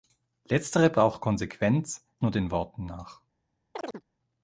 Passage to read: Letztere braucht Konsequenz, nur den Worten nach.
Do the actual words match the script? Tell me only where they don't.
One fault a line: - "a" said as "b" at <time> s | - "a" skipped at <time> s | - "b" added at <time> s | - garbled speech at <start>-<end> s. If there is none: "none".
none